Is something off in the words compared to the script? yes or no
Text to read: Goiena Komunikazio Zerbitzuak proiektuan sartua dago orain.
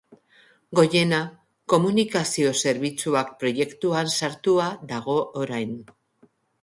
no